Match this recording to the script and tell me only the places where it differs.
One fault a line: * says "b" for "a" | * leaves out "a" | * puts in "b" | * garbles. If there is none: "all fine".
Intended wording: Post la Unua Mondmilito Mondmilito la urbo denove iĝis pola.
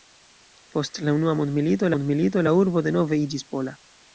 all fine